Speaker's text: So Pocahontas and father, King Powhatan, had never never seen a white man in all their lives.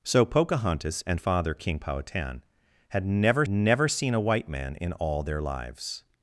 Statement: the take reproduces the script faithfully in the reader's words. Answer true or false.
true